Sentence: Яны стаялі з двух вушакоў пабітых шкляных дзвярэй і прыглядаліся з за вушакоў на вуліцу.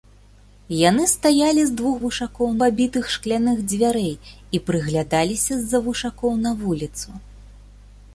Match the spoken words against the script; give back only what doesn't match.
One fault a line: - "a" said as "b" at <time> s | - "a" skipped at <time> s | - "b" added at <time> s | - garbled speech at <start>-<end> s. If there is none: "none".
none